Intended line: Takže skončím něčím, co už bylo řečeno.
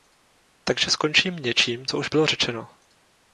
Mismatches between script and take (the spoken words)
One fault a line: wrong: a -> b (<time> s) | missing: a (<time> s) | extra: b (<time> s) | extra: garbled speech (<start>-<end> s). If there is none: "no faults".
no faults